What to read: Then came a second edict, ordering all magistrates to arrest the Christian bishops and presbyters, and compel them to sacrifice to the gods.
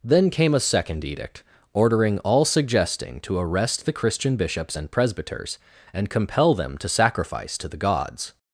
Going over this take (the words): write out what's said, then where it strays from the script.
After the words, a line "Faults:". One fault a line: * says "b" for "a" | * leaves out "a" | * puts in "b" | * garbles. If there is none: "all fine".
Then came a second edict, ordering all suggesting to arrest the Christian bishops and presbyters, and compel them to sacrifice to the gods.
Faults:
* says "suggesting" for "magistrates"